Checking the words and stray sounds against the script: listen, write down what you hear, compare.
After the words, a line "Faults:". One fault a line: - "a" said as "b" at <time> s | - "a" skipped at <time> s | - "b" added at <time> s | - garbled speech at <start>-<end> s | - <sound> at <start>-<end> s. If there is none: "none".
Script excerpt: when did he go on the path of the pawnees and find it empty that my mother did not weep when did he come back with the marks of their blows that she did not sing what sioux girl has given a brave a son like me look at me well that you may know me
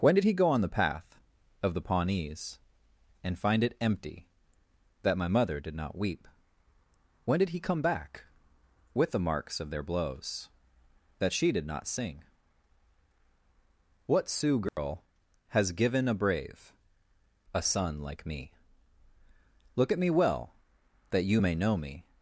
when did he go on the path of the pawnees and find it empty that my mother did not weep when did he come back with the marks of their blows that she did not sing what sioux girl has given a brave a son like me look at me well that you may know me
Faults:
- dropout at 14.7-14.8 s